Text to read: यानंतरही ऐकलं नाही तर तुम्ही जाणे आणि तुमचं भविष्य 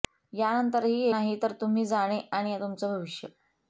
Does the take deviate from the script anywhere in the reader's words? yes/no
yes